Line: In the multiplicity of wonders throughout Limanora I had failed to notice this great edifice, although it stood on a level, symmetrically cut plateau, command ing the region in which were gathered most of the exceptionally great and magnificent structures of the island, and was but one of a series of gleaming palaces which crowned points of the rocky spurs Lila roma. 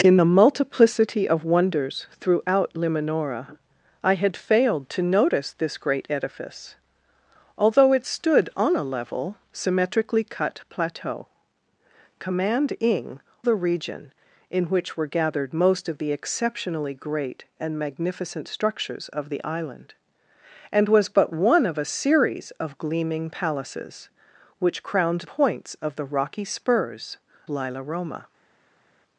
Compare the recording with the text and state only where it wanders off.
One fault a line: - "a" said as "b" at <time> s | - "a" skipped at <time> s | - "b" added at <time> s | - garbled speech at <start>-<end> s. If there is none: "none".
none